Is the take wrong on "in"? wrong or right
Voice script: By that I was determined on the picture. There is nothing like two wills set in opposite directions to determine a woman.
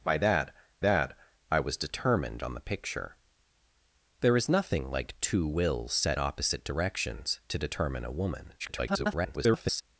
wrong